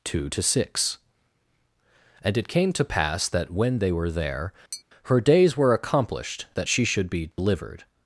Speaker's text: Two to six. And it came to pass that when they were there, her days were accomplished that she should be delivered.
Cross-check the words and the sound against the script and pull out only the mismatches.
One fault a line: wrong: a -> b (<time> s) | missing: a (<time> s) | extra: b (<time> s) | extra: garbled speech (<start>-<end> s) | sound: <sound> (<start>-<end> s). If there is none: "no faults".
sound: tap (4.7-4.8 s)
sound: dropout (7.3-7.4 s)